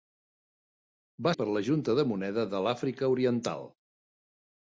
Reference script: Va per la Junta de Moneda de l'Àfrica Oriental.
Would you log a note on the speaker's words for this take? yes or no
no